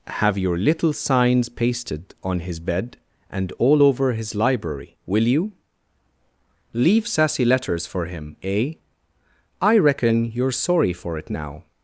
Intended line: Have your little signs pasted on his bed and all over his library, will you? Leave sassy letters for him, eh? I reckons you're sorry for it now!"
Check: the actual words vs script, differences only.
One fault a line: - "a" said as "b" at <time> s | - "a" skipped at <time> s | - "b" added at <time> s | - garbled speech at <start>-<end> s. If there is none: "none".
- "reckons" said as "reckon" at 9.8 s